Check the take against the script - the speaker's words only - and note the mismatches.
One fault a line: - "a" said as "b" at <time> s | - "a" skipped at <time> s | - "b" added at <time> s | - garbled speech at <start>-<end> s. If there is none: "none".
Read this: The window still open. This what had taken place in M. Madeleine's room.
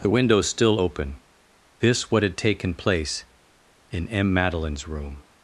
none